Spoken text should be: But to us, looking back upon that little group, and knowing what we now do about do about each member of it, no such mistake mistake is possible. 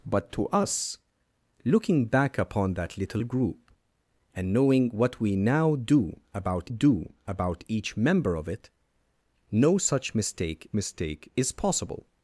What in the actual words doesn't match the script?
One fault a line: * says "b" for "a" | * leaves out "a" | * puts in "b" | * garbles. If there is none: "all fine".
all fine